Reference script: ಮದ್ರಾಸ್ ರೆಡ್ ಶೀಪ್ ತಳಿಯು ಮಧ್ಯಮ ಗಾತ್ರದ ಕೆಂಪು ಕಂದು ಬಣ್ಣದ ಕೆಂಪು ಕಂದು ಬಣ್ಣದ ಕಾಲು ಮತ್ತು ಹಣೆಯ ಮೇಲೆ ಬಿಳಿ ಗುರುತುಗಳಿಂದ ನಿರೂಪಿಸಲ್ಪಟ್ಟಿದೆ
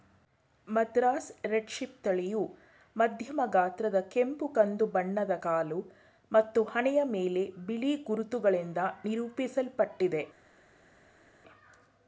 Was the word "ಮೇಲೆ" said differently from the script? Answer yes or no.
no